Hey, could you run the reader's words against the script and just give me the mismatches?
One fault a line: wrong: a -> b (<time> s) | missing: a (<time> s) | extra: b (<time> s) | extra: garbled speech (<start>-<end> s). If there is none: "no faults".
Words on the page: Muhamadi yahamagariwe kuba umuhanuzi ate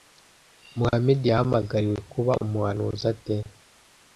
no faults